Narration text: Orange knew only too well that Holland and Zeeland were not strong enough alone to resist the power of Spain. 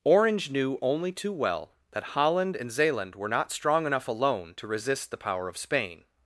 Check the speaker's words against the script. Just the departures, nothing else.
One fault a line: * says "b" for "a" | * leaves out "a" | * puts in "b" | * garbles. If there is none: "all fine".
all fine